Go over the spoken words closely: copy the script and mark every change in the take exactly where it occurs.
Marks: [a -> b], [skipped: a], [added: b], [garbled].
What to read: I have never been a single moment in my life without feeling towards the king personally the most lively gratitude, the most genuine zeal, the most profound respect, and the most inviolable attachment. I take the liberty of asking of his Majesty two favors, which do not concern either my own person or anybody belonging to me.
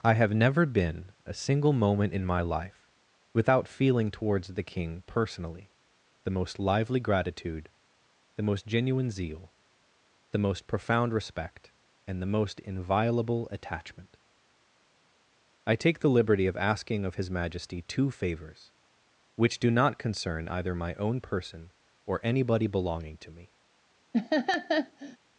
I have never been a single moment in my life without feeling towards the king personally the most lively gratitude, the most genuine zeal, the most profound respect, and the most inviolable attachment. I take the liberty of asking of his Majesty two favors, which do not concern either my own person or anybody belonging to me.